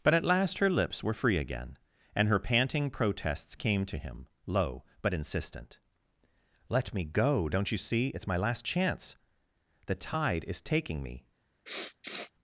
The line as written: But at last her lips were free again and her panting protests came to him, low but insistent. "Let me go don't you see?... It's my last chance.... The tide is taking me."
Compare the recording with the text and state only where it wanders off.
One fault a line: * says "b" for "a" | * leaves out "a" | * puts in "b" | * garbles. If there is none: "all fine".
all fine